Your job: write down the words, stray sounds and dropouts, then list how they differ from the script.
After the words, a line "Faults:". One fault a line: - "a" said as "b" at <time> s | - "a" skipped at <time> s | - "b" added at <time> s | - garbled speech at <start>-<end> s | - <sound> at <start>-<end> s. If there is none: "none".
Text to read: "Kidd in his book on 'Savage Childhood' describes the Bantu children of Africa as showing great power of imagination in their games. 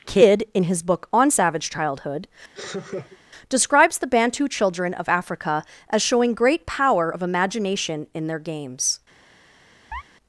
"Kidd in his book on 'Savage Childhood' describes the Bantu children of Africa as showing great power of imagination in their games.
Faults:
- laugh at 2.5-3.2 s
- chirp at 9.9-10.0 s